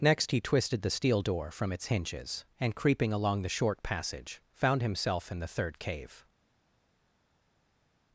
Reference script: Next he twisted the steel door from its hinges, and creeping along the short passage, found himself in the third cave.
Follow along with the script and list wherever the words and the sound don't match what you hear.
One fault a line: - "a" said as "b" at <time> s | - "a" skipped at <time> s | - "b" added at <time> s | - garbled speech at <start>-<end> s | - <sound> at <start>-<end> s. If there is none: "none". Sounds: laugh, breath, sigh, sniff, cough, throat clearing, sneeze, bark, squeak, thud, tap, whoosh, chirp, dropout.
none